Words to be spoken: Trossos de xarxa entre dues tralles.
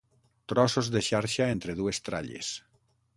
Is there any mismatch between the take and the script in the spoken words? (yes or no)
no